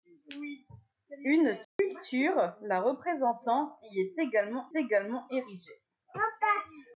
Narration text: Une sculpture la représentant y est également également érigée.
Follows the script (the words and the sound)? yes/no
no